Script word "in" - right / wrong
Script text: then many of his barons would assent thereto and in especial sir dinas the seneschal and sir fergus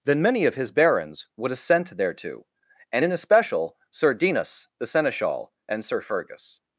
right